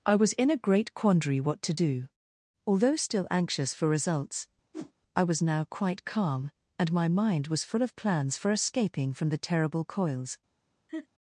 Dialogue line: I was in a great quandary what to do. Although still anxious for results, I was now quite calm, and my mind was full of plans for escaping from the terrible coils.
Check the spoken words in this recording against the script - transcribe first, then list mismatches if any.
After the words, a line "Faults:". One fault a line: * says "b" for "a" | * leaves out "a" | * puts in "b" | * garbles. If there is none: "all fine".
I was in a great quandary what to do. Although still anxious for results, I was now quite calm, and my mind was full of plans for escaping from the terrible coils.
Faults:
all fine